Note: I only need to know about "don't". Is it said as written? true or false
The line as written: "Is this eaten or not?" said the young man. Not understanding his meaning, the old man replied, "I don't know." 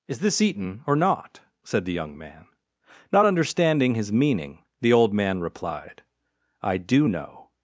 false